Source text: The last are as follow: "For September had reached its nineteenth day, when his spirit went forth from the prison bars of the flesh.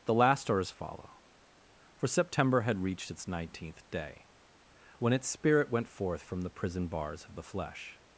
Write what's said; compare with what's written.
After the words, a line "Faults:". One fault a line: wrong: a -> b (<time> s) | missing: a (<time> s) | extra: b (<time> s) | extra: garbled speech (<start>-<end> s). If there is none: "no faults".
The last are as follow: "For September had reached its nineteenth day, when its spirit went forth from the prison bars of the flesh.
Faults:
wrong: his -> its (5.1 s)